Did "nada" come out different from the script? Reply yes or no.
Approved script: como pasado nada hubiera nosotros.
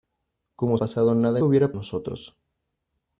no